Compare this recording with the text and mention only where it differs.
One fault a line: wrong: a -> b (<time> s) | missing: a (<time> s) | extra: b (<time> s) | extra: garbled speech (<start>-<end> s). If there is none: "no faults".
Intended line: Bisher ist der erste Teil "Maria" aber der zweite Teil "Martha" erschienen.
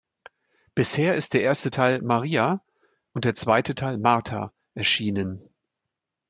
wrong: aber -> und (3.1 s)